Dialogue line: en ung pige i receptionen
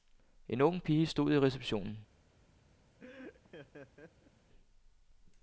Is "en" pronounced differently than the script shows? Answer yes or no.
no